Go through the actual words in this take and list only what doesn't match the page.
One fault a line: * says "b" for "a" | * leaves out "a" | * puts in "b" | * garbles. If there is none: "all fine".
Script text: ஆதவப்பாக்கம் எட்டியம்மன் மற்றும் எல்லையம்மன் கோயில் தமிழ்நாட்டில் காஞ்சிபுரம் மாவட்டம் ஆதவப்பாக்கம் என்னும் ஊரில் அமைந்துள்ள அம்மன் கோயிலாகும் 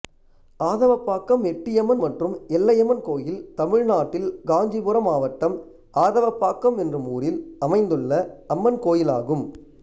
all fine